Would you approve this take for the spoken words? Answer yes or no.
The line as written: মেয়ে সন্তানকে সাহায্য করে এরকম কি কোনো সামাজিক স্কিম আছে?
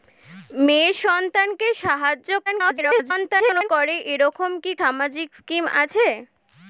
no